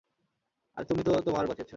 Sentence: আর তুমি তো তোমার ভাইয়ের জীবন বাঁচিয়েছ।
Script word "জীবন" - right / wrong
wrong